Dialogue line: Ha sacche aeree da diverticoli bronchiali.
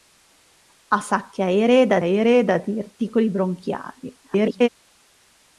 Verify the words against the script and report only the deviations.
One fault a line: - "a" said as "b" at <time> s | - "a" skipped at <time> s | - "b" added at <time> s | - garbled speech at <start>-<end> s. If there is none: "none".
- "aeree da" added at 2.0 s
- garbled speech at 4.2-4.7 s